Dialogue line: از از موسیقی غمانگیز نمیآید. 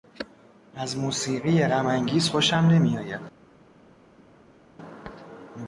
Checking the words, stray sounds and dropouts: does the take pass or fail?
fail